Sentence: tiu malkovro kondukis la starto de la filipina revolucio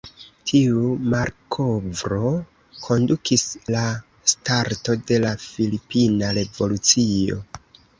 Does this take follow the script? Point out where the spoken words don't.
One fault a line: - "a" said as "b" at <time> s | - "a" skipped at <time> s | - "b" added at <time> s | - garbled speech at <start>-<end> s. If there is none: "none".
none